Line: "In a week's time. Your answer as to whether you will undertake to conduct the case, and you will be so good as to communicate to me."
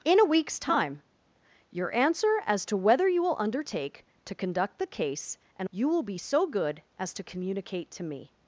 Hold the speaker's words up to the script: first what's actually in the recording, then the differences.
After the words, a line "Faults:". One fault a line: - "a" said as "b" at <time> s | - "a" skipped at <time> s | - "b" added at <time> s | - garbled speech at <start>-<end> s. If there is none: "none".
"In a week's time. Your answer as to whether you will undertake to conduct the case, and you will be so good as to communicate to me."
Faults:
none